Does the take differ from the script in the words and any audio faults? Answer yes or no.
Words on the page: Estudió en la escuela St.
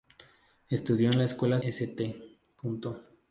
no